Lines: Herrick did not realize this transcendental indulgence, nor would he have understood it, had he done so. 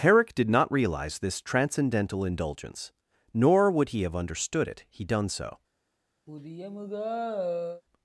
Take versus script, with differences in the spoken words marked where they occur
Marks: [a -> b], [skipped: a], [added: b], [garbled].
Herrick did not realize this transcendental indulgence, nor would he have understood it, [skipped: had] he done so.